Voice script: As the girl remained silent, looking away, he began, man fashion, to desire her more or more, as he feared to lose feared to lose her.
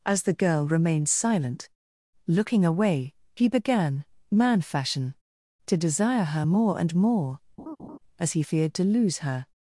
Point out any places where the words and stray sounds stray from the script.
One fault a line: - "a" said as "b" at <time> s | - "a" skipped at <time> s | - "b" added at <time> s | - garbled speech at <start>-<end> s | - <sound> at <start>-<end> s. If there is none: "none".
- "or" said as "and" at 6.8 s
- laugh at 7.6-8.0 s
- "feared to lose" skipped at 9.2 s